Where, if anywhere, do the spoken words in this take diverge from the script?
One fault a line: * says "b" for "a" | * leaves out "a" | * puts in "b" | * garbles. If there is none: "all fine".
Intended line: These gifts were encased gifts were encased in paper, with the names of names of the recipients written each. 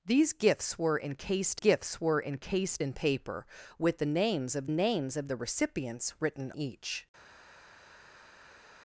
all fine